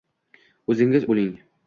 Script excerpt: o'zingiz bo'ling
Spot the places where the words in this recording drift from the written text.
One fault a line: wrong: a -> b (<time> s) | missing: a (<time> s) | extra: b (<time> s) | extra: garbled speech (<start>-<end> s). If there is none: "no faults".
no faults